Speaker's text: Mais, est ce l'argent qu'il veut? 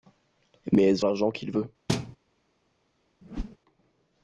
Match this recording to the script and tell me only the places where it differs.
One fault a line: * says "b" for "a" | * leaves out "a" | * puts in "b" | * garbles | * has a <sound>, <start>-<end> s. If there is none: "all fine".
* has a thud, 1.9-2.2 s
* has a whoosh, 3.2-3.6 s